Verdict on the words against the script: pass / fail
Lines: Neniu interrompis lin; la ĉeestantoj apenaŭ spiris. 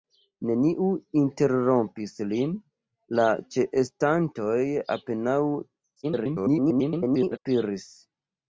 fail